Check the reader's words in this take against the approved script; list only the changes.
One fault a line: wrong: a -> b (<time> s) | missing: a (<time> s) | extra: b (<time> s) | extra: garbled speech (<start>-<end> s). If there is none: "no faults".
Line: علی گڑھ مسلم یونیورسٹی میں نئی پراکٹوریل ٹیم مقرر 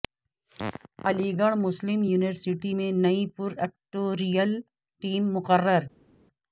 no faults